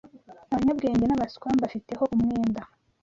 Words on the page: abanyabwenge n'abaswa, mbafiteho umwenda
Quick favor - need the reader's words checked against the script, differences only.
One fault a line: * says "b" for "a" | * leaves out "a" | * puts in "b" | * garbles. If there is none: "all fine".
all fine